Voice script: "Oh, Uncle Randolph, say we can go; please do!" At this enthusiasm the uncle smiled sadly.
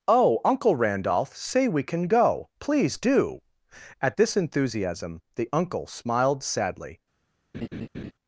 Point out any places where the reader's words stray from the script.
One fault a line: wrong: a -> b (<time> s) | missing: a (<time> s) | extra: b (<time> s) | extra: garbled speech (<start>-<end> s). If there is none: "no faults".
no faults